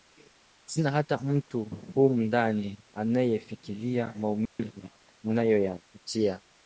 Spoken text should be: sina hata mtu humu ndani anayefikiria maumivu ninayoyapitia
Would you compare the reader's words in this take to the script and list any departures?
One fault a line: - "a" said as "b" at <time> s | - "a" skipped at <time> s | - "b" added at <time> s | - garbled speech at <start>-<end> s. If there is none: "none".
none